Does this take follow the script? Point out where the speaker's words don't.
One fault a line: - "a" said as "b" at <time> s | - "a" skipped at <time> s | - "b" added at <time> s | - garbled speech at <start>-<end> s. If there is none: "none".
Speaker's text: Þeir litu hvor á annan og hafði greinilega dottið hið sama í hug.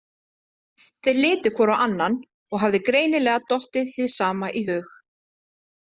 none